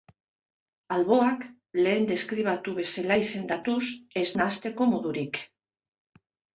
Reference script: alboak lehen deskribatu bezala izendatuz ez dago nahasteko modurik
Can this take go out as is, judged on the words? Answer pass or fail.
fail